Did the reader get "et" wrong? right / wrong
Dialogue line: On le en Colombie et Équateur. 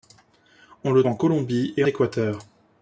right